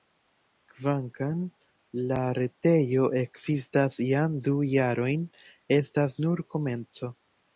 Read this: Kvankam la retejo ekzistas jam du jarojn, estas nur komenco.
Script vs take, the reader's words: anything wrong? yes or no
no